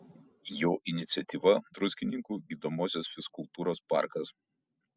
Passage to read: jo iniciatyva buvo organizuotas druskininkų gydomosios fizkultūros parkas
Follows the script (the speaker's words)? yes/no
no